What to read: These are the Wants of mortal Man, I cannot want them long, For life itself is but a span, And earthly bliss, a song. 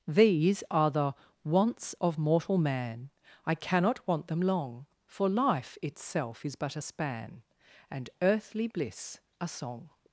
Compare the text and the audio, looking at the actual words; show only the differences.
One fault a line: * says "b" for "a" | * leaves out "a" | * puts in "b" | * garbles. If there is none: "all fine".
all fine